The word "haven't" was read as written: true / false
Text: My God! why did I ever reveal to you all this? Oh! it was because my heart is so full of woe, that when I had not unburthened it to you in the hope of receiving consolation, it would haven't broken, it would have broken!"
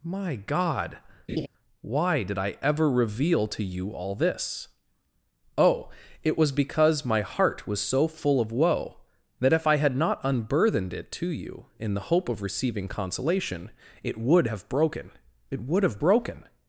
false